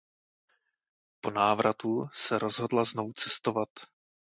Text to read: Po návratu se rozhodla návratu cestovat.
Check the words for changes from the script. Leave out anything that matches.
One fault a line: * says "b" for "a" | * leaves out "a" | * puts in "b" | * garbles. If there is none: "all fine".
* says "znovu" for "návratu"